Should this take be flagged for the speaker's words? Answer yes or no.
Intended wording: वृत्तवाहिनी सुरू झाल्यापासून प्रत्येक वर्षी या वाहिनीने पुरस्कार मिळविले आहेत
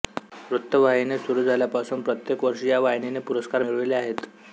no